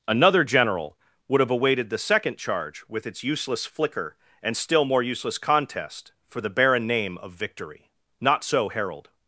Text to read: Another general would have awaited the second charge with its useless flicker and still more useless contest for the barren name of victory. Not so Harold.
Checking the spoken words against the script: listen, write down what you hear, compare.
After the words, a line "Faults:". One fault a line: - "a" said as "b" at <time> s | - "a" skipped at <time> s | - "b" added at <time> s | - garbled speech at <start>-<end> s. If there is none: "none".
Another general would have awaited the second charge with its useless flicker and still more useless contest for the barren name of victory. Not so Harold.
Faults:
none